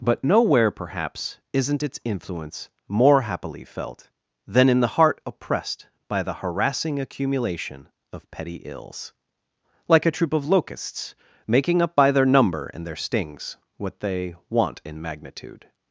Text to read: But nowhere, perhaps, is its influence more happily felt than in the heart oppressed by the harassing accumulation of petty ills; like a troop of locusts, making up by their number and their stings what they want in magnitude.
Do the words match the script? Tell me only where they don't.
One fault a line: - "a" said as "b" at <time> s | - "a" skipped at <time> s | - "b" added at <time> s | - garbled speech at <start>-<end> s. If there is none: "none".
- "is" said as "isn't" at 1.5 s